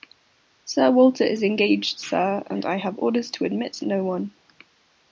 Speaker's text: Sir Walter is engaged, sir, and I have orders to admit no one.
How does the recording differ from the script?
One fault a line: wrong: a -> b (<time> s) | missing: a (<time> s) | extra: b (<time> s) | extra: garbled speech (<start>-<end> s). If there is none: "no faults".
no faults